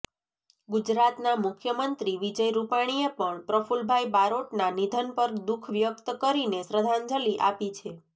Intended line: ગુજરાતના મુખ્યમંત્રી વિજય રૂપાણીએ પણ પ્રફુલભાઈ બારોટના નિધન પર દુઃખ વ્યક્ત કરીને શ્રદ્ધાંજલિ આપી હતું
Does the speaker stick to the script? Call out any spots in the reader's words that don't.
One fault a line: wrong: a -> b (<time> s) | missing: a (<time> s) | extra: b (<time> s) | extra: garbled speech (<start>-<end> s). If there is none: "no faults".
wrong: હતું -> છે (7.7 s)